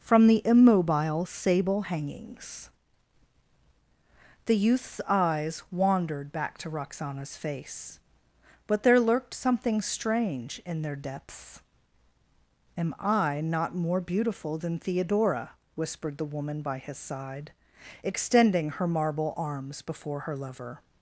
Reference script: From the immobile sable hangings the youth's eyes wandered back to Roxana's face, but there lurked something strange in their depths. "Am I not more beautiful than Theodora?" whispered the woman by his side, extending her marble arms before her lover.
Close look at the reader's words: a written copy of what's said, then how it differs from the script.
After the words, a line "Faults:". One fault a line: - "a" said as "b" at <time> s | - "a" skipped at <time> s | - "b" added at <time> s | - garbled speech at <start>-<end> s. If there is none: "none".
From the immobile sable hangings the youth's eyes wandered back to Roxana's face, but there lurked something strange in their depths. "Am I not more beautiful than Theodora?" whispered the woman by his side, extending her marble arms before her lover.
Faults:
none